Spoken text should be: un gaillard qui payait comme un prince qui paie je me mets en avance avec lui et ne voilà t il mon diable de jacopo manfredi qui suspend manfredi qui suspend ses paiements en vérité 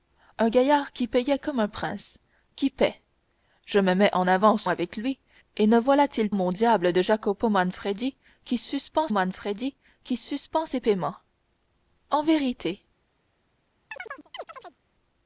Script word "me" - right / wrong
right